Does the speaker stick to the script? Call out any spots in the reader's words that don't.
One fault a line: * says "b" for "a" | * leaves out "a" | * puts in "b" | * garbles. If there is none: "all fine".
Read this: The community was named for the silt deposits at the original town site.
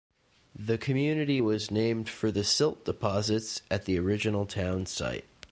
all fine